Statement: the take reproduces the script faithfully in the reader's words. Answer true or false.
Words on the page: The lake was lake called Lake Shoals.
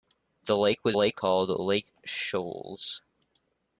true